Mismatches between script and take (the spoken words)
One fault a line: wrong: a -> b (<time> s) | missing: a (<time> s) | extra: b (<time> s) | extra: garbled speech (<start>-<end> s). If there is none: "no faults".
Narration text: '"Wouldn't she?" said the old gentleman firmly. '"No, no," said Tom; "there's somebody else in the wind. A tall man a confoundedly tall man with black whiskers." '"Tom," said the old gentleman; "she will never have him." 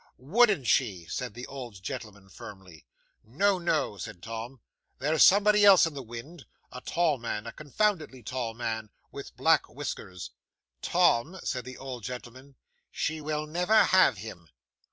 no faults